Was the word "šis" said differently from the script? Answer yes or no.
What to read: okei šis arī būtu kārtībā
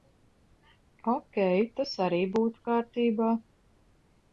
yes